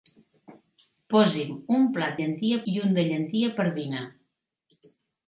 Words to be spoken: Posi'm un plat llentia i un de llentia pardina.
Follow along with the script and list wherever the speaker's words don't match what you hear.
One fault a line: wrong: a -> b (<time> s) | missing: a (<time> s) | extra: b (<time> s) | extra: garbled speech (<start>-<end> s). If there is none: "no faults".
no faults